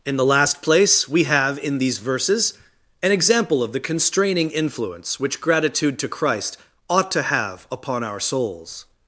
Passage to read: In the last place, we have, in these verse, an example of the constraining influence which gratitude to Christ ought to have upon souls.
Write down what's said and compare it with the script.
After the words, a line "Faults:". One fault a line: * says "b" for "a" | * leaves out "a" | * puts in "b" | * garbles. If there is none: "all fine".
In the last place, we have, in these verses, an example of the constraining influence which gratitude to Christ ought to have upon our souls.
Faults:
* says "verses" for "verse"
* puts in "our"